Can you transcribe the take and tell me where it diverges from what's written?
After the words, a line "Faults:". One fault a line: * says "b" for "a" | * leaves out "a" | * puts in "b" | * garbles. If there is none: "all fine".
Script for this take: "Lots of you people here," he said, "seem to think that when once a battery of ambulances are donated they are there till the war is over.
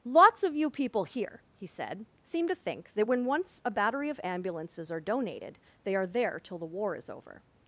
"Lots of you people here," he said, "seem to think that when once a battery of ambulances are donated they are there till the war is over.
Faults:
all fine